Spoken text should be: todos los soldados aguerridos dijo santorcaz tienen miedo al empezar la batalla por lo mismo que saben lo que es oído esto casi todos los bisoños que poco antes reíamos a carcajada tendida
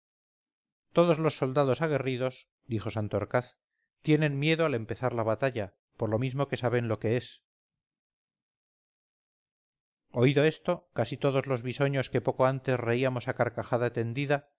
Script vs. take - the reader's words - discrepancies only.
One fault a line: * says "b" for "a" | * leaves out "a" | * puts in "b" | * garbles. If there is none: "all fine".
all fine